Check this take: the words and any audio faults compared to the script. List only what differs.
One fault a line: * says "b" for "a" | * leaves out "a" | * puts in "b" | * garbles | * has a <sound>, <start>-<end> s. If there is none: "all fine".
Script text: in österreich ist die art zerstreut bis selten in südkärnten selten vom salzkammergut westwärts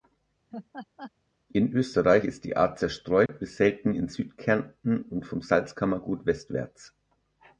* has a laugh, 0.5-1.1 s
* has a dropout, 3.3-3.3 s
* says "und" for "selten"